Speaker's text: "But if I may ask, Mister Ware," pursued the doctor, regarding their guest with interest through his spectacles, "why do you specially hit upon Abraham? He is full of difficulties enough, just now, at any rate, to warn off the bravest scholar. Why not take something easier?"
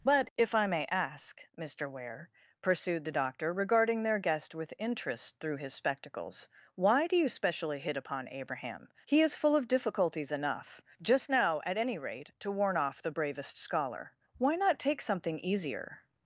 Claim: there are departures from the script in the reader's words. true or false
false